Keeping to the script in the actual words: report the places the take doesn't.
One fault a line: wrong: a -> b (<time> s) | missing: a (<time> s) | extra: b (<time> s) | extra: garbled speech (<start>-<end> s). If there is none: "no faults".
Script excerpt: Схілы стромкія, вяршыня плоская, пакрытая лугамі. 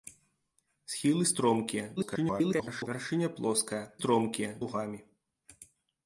extra: garbled speech (2.0-2.9 s)
wrong: пакрытая -> стромкія (4.0 s)